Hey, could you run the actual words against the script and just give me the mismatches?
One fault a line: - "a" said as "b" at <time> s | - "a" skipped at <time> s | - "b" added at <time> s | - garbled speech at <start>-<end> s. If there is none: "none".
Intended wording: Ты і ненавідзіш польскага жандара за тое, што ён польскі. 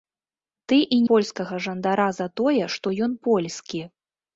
- "ненавідзіш" skipped at 1.0 s